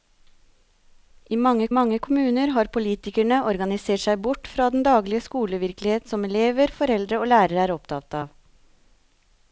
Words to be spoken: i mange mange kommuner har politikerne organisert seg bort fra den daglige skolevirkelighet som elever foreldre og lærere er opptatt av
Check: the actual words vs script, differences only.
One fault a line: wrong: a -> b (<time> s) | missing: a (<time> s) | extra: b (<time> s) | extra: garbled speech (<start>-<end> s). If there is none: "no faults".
no faults